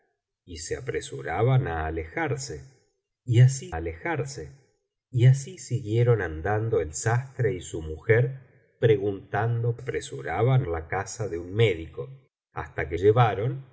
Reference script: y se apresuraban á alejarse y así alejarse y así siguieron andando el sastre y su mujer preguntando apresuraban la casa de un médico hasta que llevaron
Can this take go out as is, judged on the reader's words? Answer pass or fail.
pass